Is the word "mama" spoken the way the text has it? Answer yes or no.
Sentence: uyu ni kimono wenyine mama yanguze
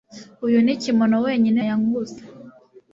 no